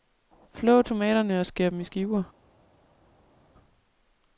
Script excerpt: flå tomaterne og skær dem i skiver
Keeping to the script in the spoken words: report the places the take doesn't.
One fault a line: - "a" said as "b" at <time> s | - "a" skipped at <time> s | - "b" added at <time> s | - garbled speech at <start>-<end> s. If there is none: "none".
none